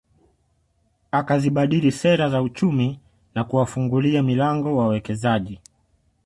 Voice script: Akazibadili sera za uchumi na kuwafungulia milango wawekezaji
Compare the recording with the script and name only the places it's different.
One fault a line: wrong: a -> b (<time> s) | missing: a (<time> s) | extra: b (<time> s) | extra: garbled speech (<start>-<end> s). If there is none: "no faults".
no faults